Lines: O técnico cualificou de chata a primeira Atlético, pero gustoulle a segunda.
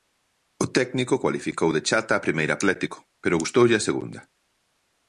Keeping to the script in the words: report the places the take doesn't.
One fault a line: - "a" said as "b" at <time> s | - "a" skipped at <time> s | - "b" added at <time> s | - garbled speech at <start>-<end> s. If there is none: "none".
none